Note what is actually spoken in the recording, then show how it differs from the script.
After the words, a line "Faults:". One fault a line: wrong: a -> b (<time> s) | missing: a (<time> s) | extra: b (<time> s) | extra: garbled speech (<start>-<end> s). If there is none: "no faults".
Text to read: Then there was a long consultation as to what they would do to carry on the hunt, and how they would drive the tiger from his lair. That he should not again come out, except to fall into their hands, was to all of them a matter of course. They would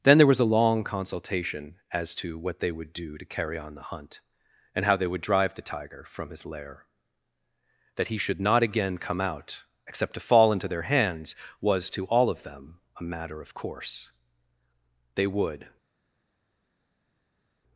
Then there was a long consultation as to what they would do to carry on the hunt, and how they would drive the tiger from his lair. That he should not again come out, except to fall into their hands, was to all of them a matter of course. They would
Faults:
no faults